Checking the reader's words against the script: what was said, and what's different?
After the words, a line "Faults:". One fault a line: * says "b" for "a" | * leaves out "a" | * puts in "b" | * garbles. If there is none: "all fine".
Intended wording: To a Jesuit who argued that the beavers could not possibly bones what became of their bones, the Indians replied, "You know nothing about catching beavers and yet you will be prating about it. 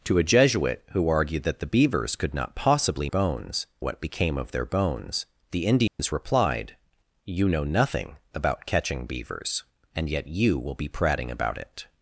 To a Jesuit who argued that the beavers could not possibly bones what became of their bones, the Indians replied, "You know nothing about catching beavers and yet you will be prating about it.
Faults:
all fine